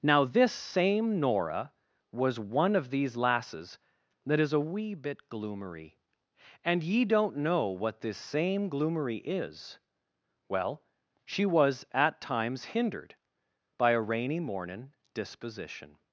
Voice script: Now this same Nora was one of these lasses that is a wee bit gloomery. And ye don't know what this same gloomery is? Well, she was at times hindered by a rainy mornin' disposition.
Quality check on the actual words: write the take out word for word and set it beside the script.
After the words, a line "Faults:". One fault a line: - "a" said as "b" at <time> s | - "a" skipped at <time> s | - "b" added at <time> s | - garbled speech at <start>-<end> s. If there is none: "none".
Now this same Nora was one of these lasses that is a wee bit gloomery. And ye don't know what this same gloomery is? Well, she was at times hindered by a rainy mornin' disposition.
Faults:
none